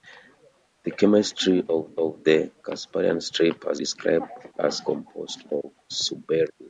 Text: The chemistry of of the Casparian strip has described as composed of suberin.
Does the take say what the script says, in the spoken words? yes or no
yes